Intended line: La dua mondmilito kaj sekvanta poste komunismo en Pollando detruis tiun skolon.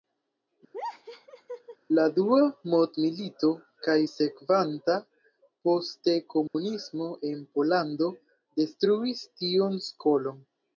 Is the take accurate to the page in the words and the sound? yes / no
no